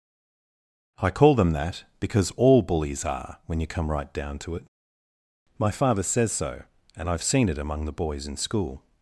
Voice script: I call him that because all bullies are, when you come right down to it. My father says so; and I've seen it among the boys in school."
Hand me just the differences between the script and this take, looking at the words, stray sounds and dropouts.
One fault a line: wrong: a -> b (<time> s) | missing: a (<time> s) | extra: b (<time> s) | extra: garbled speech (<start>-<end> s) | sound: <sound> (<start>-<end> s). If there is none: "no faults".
wrong: him -> them (1.3 s)